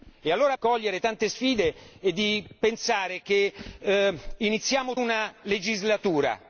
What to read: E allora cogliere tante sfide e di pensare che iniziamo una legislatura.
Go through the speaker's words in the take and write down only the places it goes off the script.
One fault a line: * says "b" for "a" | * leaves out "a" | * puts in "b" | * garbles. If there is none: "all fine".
all fine